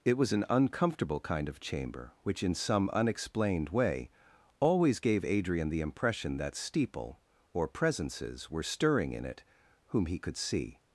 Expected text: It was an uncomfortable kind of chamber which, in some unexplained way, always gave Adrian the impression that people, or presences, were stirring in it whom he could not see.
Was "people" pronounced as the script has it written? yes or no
no